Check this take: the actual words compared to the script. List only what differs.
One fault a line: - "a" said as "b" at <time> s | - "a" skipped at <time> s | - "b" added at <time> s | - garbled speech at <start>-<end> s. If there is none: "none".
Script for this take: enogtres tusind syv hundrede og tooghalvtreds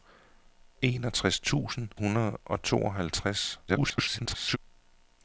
- "syv" skipped at 1.9 s
- garbled speech at 3.7-4.6 s